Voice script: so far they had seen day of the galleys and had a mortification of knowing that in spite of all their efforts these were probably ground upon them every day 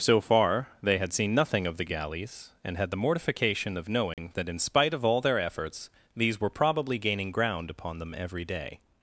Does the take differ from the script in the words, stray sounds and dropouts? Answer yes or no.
yes